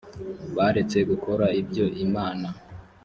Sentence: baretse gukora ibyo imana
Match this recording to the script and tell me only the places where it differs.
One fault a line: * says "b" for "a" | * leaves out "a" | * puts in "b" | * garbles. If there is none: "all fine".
all fine